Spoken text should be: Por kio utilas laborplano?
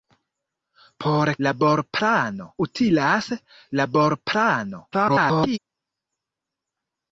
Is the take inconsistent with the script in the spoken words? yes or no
yes